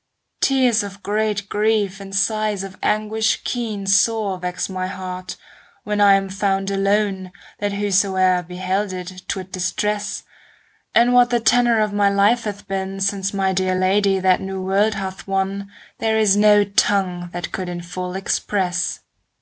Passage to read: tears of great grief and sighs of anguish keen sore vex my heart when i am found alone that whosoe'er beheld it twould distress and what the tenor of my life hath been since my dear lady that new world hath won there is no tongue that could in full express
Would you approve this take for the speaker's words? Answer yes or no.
yes